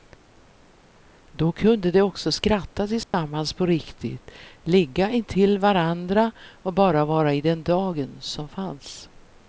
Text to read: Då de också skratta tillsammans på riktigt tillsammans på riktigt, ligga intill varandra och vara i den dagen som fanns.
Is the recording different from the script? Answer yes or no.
yes